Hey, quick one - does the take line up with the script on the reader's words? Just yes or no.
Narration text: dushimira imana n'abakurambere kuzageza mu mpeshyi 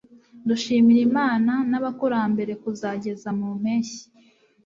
yes